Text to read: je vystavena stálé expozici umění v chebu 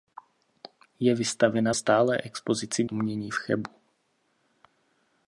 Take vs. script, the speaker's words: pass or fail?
pass